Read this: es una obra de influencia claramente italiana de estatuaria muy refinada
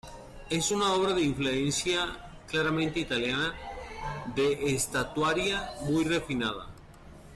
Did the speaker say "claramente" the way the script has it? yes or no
yes